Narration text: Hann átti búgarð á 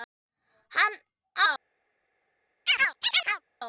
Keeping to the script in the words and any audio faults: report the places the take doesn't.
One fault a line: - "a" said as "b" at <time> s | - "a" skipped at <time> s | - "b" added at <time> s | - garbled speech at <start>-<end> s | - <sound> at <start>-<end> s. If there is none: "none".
- "átti búgarð" skipped at 0.9 s
- chirp at 2.7-3.4 s